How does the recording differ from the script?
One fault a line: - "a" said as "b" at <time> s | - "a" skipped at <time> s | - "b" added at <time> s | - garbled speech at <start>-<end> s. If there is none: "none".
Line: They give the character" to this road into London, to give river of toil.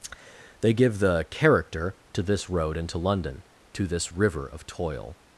- "give" said as "this" at 3.9 s